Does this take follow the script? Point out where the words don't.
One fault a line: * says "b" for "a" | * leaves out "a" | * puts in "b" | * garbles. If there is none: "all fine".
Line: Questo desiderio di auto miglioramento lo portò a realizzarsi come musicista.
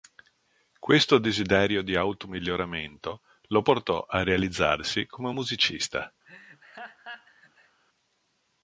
all fine